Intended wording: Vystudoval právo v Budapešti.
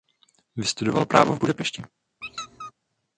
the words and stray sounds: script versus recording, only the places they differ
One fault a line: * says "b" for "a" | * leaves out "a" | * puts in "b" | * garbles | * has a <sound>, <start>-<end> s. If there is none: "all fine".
* has a squeak, 2.2-2.7 s